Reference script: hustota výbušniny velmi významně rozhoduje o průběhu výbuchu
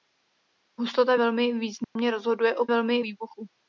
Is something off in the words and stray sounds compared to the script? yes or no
yes